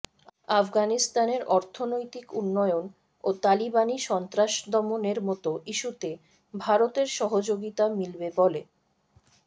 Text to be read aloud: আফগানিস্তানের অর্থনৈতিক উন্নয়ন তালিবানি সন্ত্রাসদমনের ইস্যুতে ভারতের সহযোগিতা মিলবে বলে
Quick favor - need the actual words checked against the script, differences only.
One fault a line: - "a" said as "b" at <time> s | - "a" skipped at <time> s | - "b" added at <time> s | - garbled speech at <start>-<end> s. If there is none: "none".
- "ও" added at 3.2 s
- "মতো" added at 5.2 s